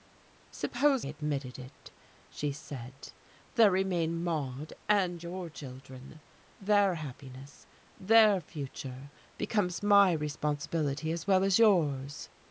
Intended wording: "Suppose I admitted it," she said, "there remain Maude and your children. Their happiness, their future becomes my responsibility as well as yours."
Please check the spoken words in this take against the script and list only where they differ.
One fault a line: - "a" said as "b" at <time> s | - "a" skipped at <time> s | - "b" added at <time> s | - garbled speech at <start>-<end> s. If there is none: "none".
- "I" skipped at 1.1 s